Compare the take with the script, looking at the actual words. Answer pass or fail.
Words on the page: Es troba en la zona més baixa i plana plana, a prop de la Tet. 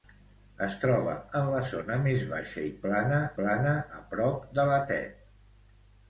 pass